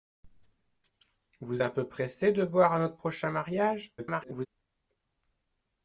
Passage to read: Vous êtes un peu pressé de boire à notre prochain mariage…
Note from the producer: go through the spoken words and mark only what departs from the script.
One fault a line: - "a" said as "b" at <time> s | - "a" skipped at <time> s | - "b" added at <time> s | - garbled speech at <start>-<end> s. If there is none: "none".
- "êtes" skipped at 1.6 s
- garbled speech at 4.0-4.5 s